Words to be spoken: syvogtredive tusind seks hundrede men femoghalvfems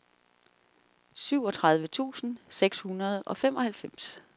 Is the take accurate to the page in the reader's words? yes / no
no